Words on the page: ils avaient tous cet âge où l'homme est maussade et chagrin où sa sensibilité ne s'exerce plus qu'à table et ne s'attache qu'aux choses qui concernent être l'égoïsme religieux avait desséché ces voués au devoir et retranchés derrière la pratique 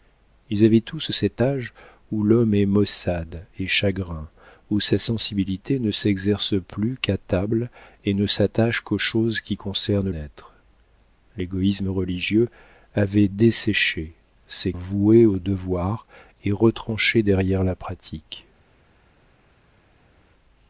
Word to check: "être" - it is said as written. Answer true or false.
true